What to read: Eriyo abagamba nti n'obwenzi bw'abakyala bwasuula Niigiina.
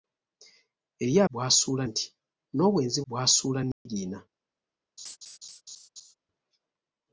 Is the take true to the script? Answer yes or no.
no